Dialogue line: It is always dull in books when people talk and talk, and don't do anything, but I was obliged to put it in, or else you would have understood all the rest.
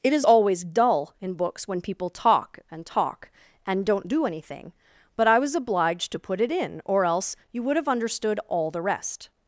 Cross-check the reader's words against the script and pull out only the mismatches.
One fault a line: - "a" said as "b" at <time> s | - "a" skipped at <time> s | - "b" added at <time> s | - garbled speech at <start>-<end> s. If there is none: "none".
none